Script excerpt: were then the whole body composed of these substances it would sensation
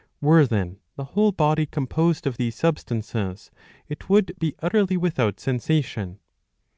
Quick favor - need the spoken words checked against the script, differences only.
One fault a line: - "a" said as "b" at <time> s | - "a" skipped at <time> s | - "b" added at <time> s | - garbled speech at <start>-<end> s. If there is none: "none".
- "be utterly without" added at 4.4 s